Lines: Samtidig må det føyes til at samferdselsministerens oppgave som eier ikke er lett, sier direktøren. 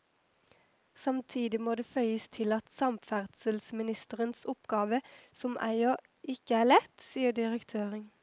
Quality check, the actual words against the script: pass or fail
pass